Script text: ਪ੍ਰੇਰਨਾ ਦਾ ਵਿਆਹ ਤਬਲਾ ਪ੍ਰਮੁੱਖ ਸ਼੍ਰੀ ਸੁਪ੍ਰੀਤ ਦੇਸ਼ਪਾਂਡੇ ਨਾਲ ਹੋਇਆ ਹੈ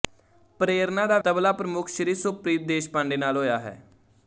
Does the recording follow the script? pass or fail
fail